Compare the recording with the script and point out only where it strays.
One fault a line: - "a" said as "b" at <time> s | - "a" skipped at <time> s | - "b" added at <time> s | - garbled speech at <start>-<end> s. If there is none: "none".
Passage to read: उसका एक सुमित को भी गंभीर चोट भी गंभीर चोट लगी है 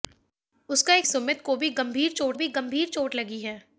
none